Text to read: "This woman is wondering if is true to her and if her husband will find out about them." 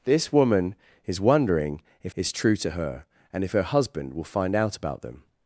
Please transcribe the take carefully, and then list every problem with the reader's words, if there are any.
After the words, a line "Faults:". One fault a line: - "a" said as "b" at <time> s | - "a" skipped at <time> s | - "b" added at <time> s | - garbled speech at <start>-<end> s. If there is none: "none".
"This woman is wondering if is true to her and if her husband will find out about them."
Faults:
none